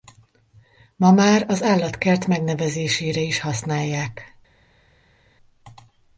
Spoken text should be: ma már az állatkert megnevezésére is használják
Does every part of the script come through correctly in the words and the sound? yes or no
yes